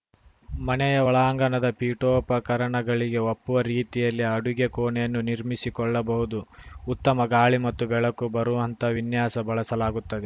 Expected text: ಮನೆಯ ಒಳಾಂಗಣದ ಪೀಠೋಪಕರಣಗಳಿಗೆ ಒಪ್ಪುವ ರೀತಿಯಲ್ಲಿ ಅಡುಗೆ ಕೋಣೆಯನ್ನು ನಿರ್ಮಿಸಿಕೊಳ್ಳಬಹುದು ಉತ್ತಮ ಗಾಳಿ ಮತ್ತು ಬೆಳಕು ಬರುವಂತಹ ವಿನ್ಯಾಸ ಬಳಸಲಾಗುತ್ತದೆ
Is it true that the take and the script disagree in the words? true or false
false